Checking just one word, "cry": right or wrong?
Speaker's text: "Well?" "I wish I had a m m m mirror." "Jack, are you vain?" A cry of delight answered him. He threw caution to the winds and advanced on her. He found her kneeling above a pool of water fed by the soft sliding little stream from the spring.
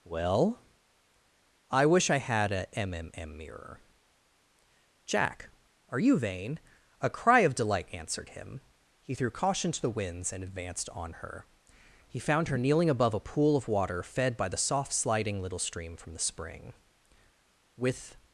right